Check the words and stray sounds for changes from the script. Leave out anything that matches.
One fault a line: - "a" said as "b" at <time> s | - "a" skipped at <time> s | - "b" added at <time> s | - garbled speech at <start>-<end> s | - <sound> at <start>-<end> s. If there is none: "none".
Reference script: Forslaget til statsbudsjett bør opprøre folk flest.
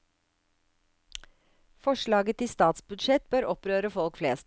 none